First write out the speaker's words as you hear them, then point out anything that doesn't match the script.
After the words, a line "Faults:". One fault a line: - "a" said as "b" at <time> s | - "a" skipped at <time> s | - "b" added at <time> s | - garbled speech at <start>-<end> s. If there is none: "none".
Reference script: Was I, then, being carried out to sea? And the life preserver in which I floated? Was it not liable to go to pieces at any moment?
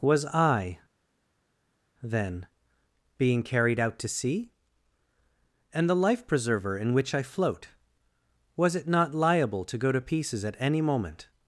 Was I, then, being carried out to sea? And the life preserver in which I float? Was it not liable to go to pieces at any moment?
Faults:
- "floated" said as "float" at 7.2 s